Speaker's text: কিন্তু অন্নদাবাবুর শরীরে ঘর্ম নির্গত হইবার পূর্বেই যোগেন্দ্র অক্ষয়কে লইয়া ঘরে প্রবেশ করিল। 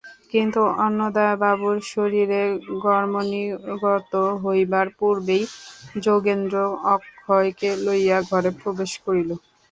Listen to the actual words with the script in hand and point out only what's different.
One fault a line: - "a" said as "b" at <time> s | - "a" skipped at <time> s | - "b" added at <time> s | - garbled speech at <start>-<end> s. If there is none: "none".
none